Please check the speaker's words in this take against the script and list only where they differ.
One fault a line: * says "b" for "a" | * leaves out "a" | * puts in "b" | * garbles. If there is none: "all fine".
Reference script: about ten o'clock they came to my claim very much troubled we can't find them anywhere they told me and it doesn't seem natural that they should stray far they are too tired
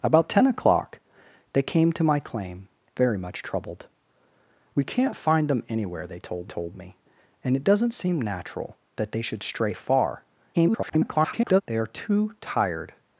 * puts in "told"
* garbles